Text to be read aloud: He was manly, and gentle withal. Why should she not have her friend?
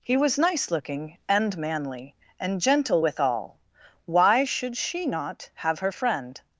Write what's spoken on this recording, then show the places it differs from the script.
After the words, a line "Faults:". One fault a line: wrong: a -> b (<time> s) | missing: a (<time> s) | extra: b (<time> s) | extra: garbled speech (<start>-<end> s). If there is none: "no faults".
He was nice looking and manly, and gentle withal. Why should she not have her friend?
Faults:
extra: nice looking and (0.4 s)